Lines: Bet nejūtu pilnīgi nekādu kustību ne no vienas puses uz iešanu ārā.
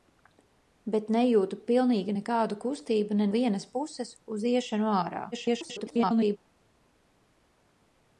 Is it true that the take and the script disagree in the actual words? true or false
true